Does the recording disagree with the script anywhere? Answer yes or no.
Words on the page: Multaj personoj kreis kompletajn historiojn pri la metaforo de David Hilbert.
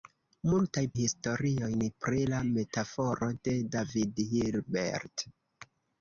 yes